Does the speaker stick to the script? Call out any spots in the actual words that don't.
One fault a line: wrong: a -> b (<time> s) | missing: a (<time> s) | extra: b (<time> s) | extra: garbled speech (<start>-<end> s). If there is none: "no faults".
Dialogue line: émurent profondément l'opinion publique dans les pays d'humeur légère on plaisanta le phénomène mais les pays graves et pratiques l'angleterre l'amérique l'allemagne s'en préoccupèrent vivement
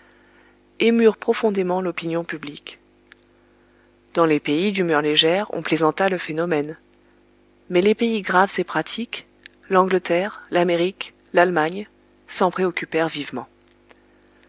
no faults